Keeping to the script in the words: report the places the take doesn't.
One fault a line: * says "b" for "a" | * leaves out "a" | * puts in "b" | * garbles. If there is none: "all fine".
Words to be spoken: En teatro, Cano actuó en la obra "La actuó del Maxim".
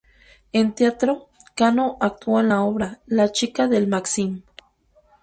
* says "chica" for "actuó"